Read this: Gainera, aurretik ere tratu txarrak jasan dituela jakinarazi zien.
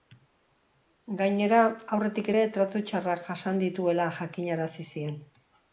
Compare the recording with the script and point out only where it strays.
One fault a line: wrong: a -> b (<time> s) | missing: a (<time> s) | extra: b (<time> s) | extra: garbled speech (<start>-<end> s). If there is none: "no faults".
no faults